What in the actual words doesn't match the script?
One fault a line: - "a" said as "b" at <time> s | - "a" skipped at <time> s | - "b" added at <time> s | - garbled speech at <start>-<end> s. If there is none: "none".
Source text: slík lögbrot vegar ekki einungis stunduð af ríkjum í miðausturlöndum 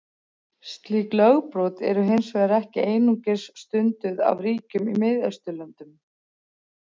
- "eru hins" added at 1.9 s